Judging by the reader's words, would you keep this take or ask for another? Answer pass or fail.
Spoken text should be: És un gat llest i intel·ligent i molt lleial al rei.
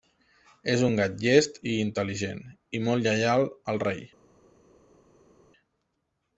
pass